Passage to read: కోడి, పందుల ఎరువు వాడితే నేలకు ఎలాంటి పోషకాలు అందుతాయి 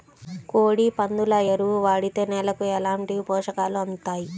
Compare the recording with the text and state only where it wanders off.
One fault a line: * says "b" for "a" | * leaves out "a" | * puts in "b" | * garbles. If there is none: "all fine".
all fine